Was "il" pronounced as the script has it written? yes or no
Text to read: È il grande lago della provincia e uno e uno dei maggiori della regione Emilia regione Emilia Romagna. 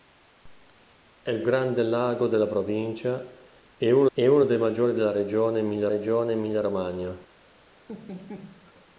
yes